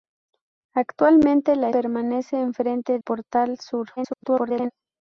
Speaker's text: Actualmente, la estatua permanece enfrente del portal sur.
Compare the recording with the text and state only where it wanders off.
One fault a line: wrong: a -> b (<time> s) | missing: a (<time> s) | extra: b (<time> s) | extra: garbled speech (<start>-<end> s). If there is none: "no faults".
missing: estatua (1.7 s)
missing: del (3.0 s)
extra: garbled speech (4.0-4.7 s)